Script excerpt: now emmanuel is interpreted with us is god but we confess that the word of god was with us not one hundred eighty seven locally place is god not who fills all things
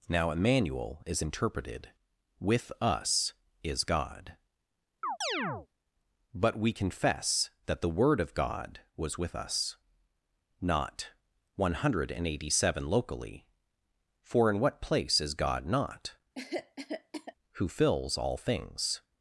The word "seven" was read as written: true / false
true